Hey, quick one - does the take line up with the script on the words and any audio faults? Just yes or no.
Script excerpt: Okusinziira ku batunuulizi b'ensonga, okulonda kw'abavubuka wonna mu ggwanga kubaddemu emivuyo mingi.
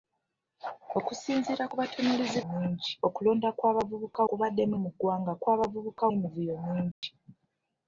no